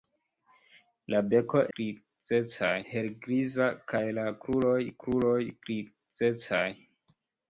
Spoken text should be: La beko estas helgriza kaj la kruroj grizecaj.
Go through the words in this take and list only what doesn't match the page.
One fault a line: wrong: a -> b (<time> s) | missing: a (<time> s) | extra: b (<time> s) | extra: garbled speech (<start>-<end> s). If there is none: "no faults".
wrong: estas -> grizecaj (1.8 s)
extra: kruroj (5.1 s)